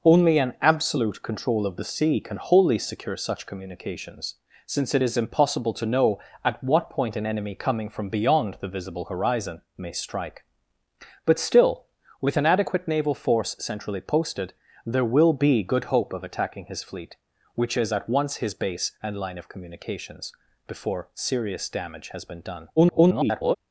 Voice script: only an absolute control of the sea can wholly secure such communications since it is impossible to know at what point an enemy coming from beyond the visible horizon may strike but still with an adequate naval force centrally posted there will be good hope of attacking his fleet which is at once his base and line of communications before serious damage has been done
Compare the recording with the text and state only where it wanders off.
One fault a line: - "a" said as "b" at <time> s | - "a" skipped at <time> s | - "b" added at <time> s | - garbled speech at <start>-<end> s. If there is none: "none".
- garbled speech at 22.8-23.6 s